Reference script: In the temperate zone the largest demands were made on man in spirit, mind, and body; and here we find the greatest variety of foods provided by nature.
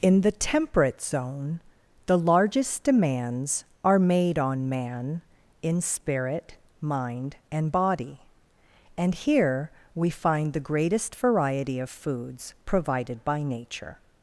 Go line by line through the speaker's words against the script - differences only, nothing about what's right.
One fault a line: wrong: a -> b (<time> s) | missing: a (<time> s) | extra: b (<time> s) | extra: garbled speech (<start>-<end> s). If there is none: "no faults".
wrong: were -> are (3.8 s)